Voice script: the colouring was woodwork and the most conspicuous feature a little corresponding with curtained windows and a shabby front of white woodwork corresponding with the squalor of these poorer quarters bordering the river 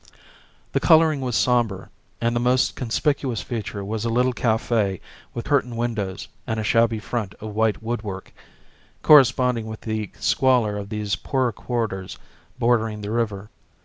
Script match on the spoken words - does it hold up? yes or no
no